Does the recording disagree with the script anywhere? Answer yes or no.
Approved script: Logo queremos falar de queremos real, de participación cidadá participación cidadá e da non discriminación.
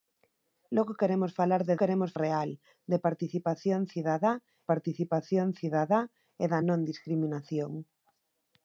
no